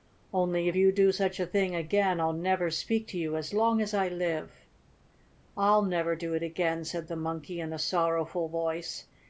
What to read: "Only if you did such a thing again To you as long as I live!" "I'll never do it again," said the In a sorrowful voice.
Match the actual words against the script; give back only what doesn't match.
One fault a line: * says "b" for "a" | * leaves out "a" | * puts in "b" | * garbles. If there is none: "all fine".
* says "do" for "did"
* puts in "I'll never speak"
* puts in "Monkey"